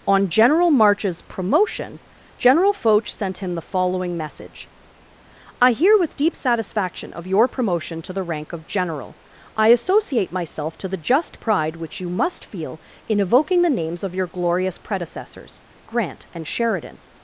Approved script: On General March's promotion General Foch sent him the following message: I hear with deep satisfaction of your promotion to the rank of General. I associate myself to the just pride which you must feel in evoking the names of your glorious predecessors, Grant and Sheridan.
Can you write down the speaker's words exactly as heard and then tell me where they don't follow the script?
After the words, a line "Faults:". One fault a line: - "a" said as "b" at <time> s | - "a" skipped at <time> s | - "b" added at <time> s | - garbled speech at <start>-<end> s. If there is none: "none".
On General March's promotion General Foch sent him the following message: I hear with deep satisfaction of your promotion to the rank of General. I associate myself to the just pride which you must feel in evoking the names of your glorious predecessors, Grant and Sheridan.
Faults:
none